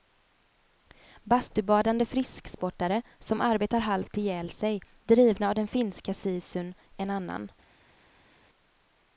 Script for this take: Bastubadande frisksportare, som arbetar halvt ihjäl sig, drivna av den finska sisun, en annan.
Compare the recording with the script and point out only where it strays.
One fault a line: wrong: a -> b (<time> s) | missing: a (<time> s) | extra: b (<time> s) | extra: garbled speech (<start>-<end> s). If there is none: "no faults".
no faults